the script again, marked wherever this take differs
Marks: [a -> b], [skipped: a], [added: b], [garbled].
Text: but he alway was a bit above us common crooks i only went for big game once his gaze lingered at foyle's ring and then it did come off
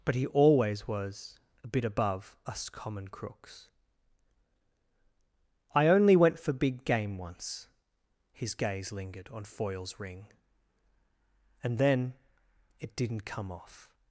but he [alway -> always] was a bit above us common crooks i only went for big game once his gaze lingered [at -> on] foyle's ring and then it [did -> didn't] come off